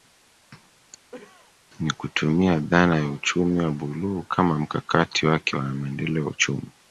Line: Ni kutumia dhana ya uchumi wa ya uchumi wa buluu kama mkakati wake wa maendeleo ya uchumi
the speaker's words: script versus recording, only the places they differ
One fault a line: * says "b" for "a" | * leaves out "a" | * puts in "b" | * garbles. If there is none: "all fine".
* leaves out "ya uchumi wa"